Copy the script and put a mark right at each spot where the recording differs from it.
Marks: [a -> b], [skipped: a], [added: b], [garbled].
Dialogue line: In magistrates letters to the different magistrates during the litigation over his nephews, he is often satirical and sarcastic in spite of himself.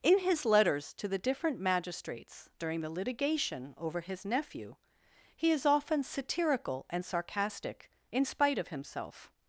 In [magistrates -> his] letters to the different magistrates during the litigation over his [nephews, -> nephew] he is often satirical and sarcastic in spite of himself.